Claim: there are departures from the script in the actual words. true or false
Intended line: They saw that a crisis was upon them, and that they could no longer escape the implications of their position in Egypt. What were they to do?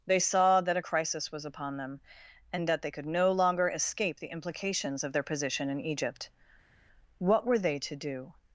false